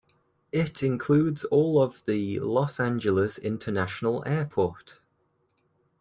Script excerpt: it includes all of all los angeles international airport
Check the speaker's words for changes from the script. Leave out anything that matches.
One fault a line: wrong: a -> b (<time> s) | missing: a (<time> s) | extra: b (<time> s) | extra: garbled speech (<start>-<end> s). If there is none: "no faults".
wrong: all -> the (2.1 s)